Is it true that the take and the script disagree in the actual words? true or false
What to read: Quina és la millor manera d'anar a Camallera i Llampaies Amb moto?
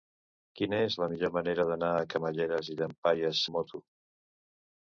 false